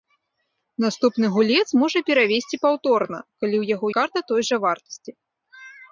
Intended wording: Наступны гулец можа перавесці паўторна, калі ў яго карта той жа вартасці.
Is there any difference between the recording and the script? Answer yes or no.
no